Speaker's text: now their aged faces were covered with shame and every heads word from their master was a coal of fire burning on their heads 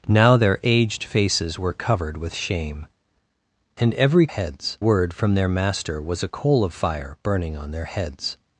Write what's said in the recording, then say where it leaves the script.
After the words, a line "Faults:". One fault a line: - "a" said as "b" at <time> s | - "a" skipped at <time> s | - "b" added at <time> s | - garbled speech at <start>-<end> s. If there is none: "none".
now their aged faces were covered with shame and every heads word from their master was a coal of fire burning on their heads
Faults:
none